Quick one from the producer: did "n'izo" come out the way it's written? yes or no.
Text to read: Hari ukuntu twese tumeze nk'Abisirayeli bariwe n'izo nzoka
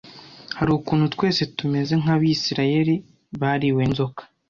no